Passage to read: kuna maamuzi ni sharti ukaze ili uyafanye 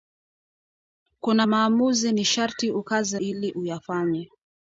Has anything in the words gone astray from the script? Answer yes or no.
no